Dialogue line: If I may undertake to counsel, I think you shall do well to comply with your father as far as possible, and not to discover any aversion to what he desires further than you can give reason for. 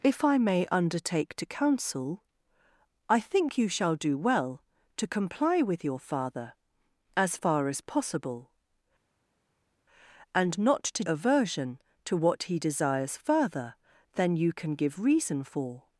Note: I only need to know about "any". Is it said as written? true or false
false